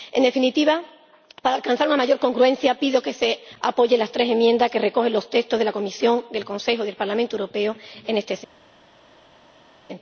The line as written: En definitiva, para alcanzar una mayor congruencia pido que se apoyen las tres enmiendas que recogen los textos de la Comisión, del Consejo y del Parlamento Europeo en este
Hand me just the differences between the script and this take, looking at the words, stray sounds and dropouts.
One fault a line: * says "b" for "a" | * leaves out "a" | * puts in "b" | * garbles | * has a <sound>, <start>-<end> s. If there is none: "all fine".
all fine